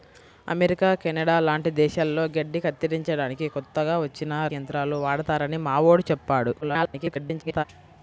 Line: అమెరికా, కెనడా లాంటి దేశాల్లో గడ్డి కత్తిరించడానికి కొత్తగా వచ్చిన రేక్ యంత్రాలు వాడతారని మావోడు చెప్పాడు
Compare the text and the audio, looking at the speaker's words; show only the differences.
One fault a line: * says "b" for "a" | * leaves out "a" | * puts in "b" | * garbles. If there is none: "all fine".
* leaves out "రేక్"
* garbles